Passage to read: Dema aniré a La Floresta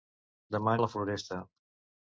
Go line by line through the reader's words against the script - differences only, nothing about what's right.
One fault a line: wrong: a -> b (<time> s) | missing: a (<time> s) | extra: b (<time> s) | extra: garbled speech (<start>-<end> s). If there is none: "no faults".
missing: aniré (0.7 s)